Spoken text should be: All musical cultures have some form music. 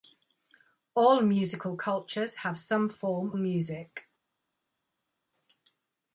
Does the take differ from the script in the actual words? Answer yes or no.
no